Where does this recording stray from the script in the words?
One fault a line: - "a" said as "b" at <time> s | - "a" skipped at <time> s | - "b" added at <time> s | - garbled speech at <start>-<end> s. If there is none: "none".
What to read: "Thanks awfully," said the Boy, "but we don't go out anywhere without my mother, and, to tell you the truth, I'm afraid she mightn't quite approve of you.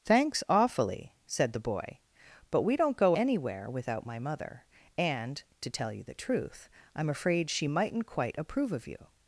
- "out" skipped at 3.1 s